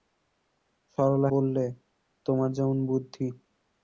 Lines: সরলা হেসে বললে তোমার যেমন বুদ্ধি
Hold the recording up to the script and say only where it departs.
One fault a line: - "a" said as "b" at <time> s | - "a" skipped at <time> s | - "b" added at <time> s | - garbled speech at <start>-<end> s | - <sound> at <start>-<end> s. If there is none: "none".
- "হেসে" skipped at 1.3 s